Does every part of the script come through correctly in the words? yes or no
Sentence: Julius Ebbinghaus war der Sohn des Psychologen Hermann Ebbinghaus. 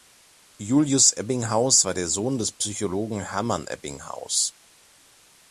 yes